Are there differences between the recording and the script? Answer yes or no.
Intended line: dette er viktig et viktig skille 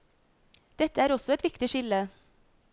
yes